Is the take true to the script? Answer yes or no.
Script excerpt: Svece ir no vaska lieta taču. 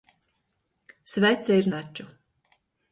no